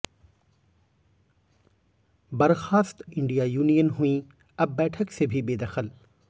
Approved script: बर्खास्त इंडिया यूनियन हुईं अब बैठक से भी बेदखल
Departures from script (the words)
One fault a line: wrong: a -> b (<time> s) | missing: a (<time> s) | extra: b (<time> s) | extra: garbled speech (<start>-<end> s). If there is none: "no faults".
no faults